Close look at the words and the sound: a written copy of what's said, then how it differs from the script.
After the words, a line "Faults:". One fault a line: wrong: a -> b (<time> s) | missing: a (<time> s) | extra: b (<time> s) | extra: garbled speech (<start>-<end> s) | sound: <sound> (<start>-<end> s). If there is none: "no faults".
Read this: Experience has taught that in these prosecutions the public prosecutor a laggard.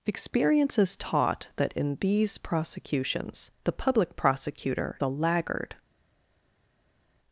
Experience has taught that in these prosecutions the public prosecutor a laggard.
Faults:
no faults